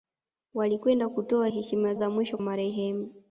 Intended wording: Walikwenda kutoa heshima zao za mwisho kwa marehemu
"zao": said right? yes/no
no